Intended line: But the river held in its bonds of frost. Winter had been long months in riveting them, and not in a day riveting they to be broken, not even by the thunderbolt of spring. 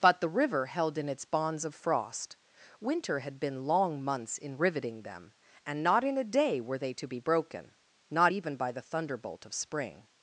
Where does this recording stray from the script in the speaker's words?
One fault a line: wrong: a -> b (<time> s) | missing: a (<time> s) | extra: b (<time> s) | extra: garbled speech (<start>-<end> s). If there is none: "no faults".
wrong: riveting -> were (6.6 s)